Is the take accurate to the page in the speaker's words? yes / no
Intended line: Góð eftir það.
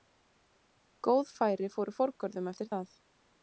no